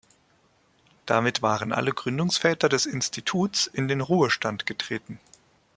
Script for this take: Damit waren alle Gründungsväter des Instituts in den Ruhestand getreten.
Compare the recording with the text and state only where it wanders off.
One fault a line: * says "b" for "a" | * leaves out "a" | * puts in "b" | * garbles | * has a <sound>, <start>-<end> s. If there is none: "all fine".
all fine